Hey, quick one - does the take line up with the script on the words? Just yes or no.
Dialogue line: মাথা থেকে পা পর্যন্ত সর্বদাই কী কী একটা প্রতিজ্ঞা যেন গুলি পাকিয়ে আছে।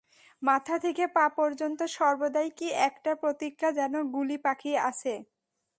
no